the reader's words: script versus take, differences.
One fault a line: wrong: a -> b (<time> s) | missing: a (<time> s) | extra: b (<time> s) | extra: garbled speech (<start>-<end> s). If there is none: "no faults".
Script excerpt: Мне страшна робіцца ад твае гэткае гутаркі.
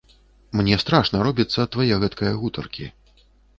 no faults